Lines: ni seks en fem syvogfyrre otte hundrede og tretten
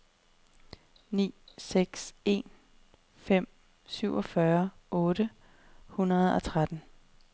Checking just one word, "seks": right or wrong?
right